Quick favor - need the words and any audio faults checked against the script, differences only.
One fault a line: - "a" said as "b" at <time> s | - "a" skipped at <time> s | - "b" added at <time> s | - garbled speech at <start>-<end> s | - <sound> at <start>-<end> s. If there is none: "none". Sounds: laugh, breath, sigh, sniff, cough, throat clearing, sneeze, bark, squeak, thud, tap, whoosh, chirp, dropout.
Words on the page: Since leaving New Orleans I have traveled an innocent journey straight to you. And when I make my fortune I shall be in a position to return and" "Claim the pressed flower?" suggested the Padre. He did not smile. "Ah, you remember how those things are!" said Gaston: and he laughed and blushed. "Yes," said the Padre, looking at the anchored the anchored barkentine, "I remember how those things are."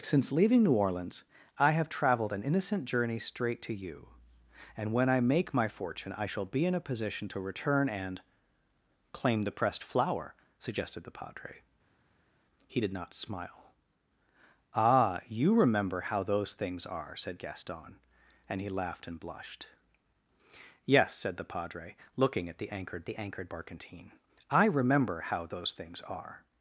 none